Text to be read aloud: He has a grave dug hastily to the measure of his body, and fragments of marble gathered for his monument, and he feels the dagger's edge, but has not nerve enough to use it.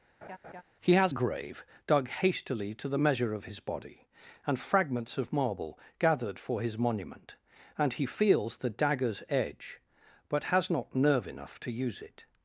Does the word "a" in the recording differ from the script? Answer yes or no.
yes